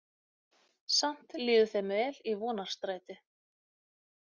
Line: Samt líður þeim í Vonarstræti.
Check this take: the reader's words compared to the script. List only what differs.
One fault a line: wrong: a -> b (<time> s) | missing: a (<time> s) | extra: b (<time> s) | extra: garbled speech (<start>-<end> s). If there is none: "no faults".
extra: vel (2.0 s)